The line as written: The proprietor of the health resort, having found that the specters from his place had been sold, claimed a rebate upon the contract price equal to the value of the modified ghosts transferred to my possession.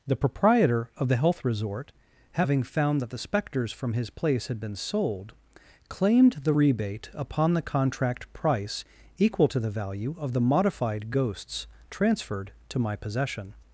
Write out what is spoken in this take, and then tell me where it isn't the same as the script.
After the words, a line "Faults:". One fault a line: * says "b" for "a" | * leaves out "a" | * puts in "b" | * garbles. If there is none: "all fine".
The proprietor of the health resort, having found that the specters from his place had been sold, claimed the rebate upon the contract price equal to the value of the modified ghosts transferred to my possession.
Faults:
* says "the" for "a"